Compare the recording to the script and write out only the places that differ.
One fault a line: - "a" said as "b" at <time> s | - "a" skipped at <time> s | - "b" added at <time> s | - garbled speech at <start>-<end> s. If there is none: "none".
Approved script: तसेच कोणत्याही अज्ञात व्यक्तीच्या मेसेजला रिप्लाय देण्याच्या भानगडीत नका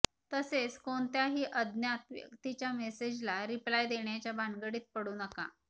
- "पडू" added at 4.9 s